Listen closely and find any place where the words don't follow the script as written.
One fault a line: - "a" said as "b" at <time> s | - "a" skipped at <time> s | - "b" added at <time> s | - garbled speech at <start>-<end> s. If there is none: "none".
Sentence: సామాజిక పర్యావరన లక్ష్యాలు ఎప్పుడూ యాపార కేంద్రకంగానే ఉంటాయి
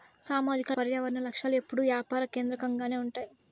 none